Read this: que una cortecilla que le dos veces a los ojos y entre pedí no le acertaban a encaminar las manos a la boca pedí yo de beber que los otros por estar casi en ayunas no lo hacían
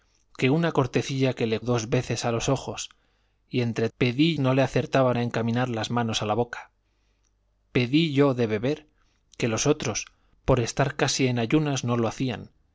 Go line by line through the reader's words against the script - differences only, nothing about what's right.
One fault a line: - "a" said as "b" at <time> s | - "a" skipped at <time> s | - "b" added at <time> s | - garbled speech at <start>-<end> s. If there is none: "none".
none